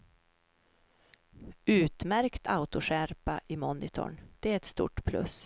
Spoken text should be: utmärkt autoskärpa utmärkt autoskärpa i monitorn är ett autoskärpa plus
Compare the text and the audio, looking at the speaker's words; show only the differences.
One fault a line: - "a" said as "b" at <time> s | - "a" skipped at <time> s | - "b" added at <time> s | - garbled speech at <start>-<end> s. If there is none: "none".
- "utmärkt autoskärpa" skipped at 3.4 s
- "det" added at 4.4 s
- "autoskärpa" said as "stort" at 4.7 s